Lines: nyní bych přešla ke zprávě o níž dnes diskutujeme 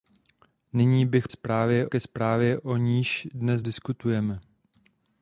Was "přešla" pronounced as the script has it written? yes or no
no